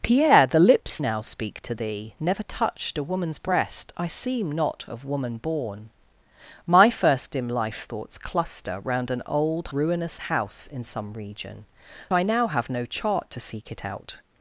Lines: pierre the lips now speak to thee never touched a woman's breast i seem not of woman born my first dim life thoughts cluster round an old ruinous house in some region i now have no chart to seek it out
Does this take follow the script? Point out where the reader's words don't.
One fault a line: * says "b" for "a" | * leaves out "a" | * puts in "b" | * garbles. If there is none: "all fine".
all fine